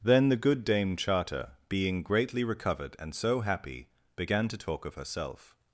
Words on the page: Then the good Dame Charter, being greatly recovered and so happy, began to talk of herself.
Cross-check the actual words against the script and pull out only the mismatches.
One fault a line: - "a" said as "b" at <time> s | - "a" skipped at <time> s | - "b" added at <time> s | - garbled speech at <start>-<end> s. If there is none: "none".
none